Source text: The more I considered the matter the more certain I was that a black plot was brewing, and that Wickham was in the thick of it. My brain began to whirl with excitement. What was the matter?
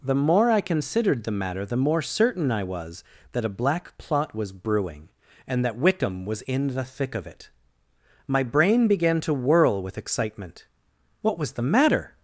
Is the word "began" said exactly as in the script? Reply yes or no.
yes